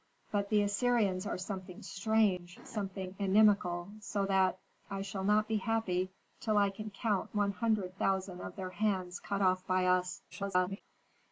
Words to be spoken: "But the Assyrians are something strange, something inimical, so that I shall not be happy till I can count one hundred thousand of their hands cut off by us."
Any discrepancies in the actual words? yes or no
yes